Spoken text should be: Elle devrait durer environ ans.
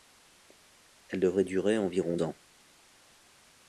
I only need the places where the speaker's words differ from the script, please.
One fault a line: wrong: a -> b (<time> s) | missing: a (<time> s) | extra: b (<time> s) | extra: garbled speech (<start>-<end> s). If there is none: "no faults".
no faults